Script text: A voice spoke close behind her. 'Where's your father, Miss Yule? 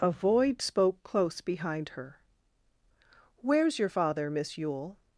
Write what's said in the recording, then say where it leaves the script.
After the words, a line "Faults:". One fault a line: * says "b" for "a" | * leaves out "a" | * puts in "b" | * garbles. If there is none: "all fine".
A void spoke close behind her. 'Where's your father, Miss Yule?
Faults:
* says "void" for "voice"